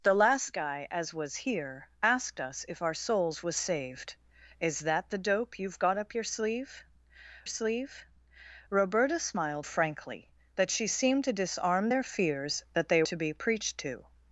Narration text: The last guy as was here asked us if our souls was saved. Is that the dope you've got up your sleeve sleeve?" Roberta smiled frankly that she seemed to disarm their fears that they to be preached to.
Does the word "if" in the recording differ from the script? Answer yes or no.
no